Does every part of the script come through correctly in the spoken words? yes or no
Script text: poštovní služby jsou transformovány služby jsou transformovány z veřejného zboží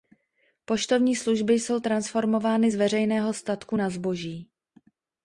no